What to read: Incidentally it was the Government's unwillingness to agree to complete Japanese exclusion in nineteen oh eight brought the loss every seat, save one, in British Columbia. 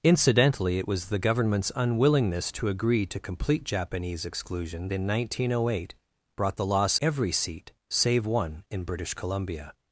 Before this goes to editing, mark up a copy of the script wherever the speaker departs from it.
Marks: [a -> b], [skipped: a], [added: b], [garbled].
Incidentally it was the Government's unwillingness to agree to complete Japanese exclusion in nineteen oh eight brought the loss every seat, save one, in British Columbia.